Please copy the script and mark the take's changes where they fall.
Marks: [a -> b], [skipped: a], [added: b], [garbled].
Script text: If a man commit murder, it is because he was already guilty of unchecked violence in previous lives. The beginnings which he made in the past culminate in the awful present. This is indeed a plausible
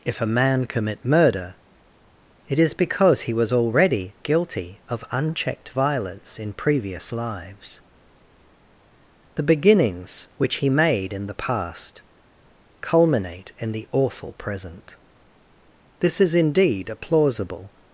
If a man commit murder, it is because he was already guilty of unchecked violence in previous lives. The beginnings which he made in the past culminate in the awful present. This is indeed a plausible